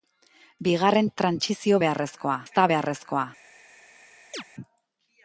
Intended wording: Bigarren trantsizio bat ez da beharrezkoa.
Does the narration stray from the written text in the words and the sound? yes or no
yes